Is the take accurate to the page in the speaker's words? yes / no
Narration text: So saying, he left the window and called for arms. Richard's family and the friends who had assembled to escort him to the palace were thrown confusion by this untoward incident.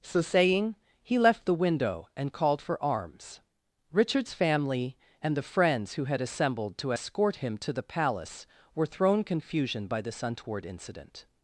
yes